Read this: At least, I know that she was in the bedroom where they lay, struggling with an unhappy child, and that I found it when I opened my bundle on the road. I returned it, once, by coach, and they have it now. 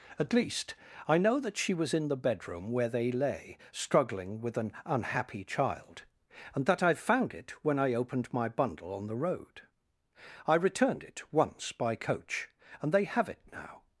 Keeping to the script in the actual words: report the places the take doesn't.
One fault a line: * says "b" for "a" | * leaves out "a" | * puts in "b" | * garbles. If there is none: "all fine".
all fine